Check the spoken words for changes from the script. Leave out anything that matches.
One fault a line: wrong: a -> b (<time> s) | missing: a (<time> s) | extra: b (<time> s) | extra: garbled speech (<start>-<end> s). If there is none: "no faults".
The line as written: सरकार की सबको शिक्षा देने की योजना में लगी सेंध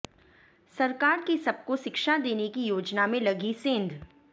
no faults